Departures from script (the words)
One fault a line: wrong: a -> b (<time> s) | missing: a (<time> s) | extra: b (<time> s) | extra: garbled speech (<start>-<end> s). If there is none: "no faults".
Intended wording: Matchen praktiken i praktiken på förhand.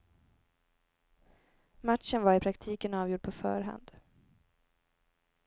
wrong: praktiken -> var (2.2 s)
extra: avgjord (2.9 s)